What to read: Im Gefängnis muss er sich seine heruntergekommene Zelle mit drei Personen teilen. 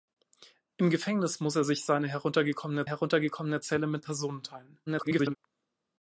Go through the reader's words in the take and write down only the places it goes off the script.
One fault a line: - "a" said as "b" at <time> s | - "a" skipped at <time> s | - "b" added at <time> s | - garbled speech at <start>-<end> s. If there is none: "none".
- "heruntergekommene" added at 2.8 s
- "drei" skipped at 4.0 s
- garbled speech at 4.9-5.4 s